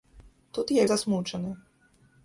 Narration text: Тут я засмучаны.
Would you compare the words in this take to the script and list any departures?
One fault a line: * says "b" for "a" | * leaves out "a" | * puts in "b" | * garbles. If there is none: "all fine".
all fine